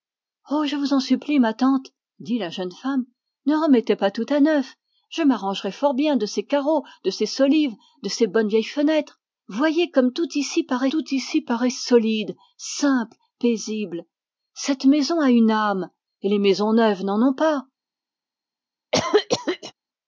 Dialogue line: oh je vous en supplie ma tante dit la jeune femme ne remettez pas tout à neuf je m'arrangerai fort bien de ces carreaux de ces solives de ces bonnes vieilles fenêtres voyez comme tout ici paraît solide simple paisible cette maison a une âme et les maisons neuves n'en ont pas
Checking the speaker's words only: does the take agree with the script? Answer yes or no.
no